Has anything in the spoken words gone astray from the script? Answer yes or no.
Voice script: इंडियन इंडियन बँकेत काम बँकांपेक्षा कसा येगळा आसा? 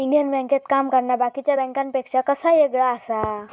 yes